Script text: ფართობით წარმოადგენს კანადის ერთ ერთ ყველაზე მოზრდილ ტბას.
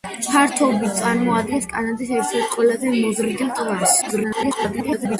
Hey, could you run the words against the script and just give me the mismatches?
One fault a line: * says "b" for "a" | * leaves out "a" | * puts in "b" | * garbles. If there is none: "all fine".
* garbles